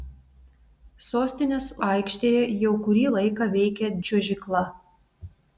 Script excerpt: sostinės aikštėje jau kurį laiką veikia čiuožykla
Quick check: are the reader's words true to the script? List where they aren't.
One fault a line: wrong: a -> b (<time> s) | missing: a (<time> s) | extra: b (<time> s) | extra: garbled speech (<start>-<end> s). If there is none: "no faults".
no faults